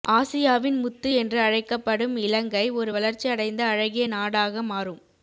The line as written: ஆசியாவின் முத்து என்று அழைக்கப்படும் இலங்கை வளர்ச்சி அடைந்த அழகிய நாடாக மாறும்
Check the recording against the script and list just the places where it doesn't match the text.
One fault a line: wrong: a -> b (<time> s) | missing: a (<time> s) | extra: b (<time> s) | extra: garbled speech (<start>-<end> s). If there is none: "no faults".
extra: ஒரு (2.7 s)